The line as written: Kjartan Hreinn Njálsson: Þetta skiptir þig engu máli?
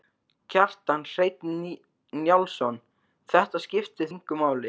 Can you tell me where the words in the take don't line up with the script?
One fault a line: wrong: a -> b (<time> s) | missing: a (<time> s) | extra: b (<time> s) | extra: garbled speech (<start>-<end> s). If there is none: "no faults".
missing: þig (4.1 s)